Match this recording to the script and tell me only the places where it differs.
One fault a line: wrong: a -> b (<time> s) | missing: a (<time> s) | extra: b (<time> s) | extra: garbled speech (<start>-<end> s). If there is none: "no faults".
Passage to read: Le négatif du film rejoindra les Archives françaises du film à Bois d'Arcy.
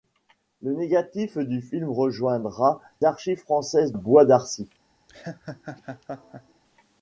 missing: les (2.8 s)
missing: du film à (3.9 s)